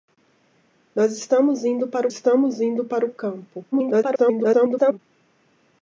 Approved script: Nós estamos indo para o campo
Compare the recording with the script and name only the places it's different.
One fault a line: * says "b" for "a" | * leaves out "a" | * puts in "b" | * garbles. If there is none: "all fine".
* puts in "estamos indo para"
* garbles